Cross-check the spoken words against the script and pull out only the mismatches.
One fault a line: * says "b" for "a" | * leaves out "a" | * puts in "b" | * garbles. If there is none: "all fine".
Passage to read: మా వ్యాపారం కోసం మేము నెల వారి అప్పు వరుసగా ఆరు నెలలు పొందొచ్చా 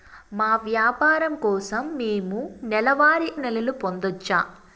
* leaves out "అప్పు వరుసగా ఆరు"